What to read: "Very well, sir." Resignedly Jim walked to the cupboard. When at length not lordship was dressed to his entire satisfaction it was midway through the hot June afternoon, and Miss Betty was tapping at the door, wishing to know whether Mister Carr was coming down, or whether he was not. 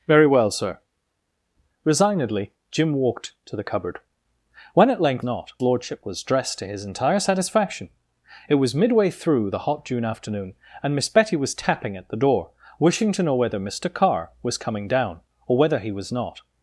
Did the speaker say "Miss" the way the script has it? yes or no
yes